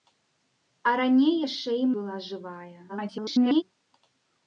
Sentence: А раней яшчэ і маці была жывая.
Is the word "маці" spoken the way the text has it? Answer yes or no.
no